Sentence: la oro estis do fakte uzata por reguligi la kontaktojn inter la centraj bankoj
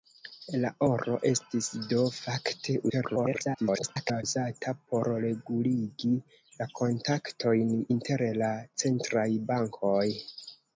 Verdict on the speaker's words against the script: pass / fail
fail